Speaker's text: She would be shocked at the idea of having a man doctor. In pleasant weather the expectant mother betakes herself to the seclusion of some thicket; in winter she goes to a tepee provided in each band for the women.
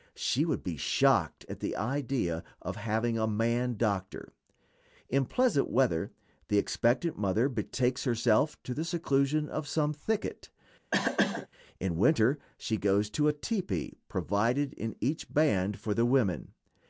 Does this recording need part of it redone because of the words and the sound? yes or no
yes